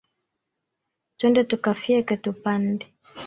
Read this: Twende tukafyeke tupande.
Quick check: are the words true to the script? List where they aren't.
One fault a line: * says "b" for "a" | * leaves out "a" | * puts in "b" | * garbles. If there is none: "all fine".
all fine